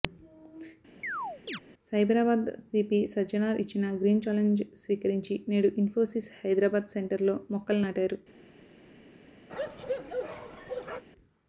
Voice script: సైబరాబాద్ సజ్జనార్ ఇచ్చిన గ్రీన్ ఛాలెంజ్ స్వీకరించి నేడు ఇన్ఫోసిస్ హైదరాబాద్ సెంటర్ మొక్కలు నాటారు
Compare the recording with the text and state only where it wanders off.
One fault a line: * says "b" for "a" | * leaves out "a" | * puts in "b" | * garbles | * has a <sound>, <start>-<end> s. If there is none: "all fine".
* has a chirp, 1.0-1.6 s
* puts in "సీపీ"
* puts in "లో"
* has a bark, 9.5-11.0 s